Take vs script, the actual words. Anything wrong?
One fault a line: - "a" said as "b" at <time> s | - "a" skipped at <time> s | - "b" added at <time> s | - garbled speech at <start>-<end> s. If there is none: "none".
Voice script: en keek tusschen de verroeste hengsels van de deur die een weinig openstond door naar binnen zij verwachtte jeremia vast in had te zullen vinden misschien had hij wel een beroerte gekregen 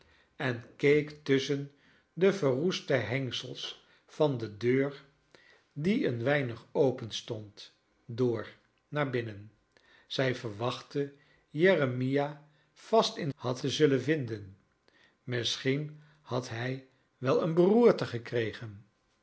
none